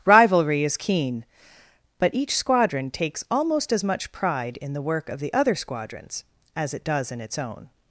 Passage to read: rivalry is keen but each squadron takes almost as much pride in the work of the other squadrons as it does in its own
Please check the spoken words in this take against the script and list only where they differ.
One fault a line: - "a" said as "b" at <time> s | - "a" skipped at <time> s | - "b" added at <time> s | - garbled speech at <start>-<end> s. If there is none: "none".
none